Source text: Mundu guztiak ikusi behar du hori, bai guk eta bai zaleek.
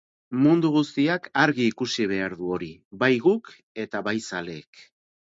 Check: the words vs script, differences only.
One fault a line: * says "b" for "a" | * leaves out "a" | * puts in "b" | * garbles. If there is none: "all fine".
* puts in "argi"